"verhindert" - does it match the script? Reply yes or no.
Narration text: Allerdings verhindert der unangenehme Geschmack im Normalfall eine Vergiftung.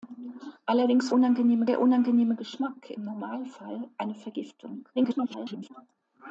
no